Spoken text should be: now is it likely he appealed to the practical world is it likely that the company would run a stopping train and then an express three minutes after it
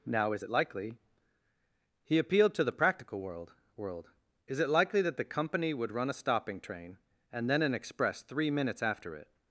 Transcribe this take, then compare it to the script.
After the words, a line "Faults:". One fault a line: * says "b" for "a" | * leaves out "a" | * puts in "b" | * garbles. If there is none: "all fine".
now is it likely he appealed to the practical world world is it likely that the company would run a stopping train and then an express three minutes after it
Faults:
* puts in "world"